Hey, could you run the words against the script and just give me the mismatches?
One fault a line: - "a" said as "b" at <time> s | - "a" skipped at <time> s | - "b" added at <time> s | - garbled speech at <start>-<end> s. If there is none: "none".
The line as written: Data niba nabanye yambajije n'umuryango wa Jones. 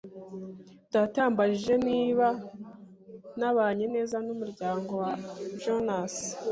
- "yambajije" added at 1.2 s
- "yambajije" said as "neza" at 3.9 s